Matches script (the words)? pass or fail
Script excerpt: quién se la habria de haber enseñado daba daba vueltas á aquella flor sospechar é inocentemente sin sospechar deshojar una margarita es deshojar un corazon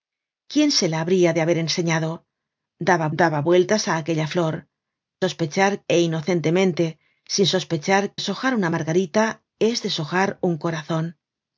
pass